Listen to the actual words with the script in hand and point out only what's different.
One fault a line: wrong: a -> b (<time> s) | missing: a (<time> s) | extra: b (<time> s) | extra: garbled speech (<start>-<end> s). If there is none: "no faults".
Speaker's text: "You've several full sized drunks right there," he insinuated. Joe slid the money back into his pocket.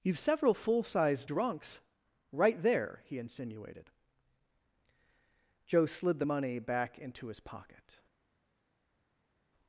no faults